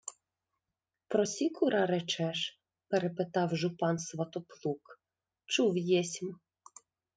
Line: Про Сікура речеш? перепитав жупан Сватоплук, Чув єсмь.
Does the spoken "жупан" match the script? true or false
true